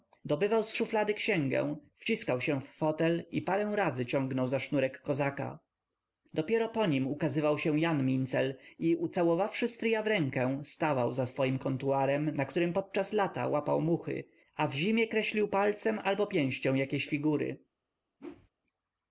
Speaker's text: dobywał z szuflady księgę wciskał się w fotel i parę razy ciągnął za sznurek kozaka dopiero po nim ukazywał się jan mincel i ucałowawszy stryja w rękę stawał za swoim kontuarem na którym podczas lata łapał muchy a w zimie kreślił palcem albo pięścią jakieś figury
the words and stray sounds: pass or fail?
fail